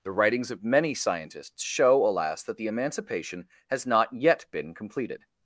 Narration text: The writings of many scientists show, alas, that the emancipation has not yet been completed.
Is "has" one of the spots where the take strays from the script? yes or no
no